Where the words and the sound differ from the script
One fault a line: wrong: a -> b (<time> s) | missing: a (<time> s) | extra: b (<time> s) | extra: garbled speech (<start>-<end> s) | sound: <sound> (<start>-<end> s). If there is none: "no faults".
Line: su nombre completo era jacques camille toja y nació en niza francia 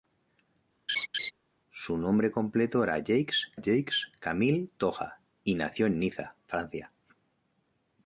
sound: laugh (0.9-1.3 s)
extra: jacques (3.6 s)